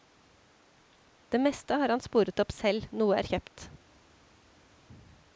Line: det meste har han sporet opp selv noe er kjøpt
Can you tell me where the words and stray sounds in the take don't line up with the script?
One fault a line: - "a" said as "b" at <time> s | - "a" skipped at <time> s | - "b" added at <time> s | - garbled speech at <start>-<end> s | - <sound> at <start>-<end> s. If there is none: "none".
none